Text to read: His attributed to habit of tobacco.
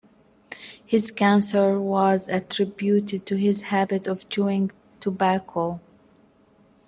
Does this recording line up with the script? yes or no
no